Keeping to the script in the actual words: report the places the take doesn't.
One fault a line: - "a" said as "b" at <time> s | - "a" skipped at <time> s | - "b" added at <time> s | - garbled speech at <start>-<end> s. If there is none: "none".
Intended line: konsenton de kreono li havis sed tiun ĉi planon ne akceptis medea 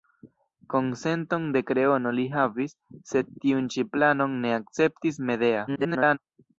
- garbled speech at 5.7-6.2 s